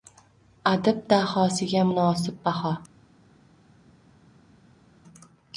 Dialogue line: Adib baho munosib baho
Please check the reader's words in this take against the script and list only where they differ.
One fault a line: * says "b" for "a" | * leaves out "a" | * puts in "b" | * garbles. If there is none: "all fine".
* says "dahosiga" for "baho"